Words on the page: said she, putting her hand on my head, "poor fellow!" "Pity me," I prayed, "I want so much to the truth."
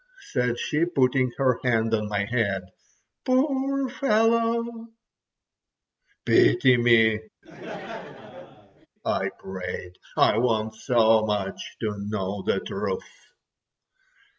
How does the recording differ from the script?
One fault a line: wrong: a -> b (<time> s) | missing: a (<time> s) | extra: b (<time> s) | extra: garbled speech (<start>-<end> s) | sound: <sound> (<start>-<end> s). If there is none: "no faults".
sound: laugh (7.4-8.9 s)
extra: know (12.0 s)